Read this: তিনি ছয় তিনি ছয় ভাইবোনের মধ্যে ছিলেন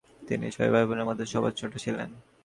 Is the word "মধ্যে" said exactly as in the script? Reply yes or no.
no